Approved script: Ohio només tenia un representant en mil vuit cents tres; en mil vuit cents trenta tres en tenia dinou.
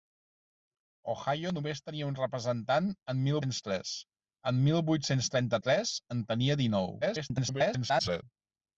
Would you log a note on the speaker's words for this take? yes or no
yes